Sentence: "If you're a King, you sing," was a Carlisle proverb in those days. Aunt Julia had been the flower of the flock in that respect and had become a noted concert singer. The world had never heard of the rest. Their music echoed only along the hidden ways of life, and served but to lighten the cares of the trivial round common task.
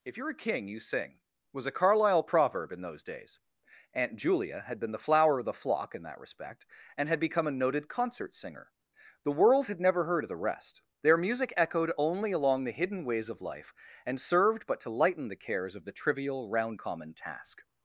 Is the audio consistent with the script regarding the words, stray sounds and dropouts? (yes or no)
yes